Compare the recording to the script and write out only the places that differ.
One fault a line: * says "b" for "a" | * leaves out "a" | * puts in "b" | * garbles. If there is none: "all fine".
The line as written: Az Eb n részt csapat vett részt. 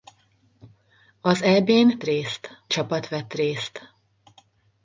all fine